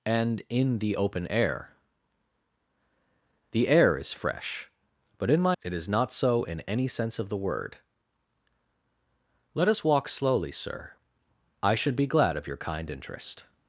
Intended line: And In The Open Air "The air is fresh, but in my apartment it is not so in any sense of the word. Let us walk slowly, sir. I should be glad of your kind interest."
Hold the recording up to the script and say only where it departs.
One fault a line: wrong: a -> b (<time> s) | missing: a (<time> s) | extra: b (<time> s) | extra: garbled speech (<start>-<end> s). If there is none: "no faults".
missing: apartment (5.6 s)